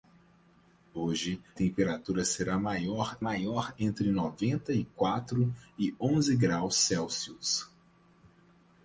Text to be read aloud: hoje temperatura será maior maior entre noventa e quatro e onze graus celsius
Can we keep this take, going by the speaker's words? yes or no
yes